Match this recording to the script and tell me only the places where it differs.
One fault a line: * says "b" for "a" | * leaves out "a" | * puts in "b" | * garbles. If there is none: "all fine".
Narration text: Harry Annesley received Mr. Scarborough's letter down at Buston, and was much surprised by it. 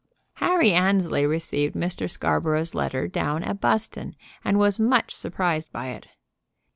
all fine